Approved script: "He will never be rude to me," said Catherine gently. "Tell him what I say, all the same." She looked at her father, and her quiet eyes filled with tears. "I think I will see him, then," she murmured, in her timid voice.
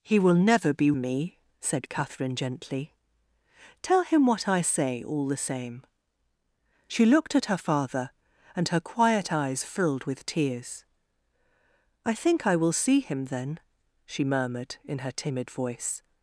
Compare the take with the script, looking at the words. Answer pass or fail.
fail